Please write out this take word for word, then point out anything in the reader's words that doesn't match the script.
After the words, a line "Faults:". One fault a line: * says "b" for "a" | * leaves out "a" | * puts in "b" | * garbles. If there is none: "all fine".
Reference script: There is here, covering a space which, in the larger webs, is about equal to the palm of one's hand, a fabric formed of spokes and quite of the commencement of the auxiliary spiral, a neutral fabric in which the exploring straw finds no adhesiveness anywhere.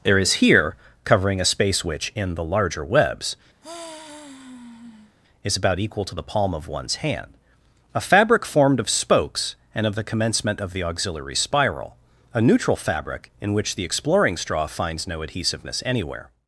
There is here, covering a space which, in the larger webs, is about equal to the palm of one's hand, a fabric formed of spokes and of the commencement of the auxiliary spiral, a neutral fabric in which the exploring straw finds no adhesiveness anywhere.
Faults:
* leaves out "quite"